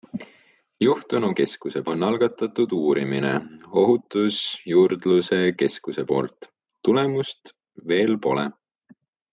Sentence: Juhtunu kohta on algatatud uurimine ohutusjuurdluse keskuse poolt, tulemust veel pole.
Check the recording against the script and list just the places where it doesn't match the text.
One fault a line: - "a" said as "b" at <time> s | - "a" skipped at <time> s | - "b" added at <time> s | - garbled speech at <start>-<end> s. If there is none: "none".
- "kohta" said as "keskuse" at 1.4 s